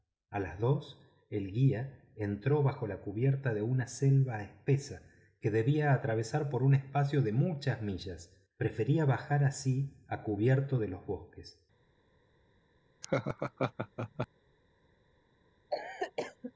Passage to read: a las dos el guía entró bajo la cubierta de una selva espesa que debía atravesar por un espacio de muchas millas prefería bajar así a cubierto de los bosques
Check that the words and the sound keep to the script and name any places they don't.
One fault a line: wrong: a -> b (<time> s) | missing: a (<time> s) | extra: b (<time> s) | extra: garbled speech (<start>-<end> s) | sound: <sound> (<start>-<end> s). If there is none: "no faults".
sound: laugh (13.0-14.3 s)
sound: cough (15.7-16.5 s)